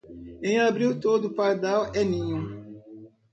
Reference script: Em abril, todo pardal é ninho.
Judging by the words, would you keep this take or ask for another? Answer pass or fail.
pass